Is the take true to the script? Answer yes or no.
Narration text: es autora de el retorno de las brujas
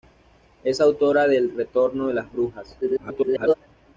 no